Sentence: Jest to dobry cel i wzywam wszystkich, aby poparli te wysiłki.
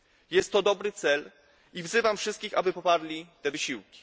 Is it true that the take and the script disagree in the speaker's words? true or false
false